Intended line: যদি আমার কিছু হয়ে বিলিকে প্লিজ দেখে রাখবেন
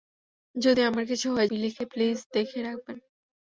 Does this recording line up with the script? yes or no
yes